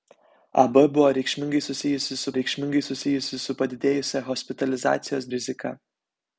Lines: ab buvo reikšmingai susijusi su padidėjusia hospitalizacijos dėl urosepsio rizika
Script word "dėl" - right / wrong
wrong